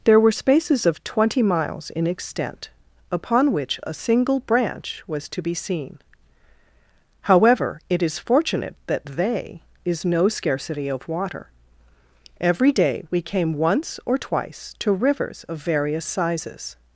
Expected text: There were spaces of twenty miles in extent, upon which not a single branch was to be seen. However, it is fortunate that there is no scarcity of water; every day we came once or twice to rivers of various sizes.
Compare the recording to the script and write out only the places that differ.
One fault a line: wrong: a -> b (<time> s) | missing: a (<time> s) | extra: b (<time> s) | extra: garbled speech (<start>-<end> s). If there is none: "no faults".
missing: not (3.8 s)
wrong: there -> they (9.1 s)